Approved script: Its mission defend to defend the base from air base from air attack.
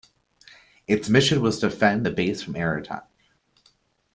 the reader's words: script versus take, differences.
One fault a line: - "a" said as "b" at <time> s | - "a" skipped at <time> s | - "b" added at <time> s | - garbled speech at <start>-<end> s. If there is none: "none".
- "defend" said as "was" at 1.4 s
- "base from air" skipped at 2.8 s